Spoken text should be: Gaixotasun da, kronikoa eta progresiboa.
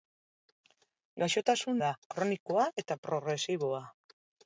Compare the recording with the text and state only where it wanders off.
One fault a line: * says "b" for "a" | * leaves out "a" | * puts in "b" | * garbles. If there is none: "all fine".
all fine